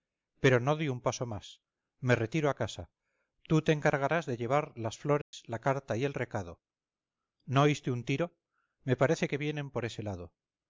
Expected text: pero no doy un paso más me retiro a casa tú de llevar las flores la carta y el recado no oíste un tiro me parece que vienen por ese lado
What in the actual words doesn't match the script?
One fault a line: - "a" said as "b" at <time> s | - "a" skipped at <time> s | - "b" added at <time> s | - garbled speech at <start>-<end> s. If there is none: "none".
- "te encargarás" added at 3.6 s